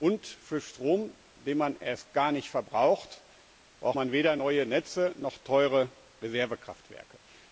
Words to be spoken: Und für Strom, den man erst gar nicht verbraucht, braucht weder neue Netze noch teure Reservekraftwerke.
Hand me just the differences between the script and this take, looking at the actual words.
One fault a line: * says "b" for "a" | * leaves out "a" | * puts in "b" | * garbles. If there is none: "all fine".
* puts in "man"